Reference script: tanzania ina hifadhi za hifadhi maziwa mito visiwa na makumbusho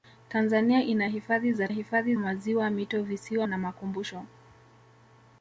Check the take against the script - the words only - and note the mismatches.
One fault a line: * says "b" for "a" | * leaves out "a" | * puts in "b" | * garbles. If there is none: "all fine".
all fine